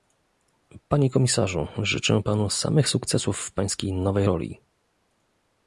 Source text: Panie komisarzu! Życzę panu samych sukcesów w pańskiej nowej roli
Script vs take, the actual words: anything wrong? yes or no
no